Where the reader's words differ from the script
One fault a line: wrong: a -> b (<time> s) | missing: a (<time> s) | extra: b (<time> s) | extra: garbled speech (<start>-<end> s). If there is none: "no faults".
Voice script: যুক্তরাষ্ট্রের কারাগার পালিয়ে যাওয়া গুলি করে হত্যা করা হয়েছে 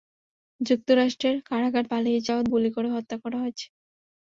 no faults